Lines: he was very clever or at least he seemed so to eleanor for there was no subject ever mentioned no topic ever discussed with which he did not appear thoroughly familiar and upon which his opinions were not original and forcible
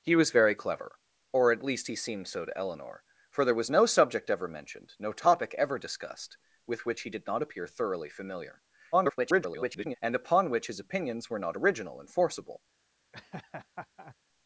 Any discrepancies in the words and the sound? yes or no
yes